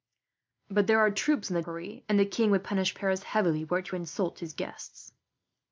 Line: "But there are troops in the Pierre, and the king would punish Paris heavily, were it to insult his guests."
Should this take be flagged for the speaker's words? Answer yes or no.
no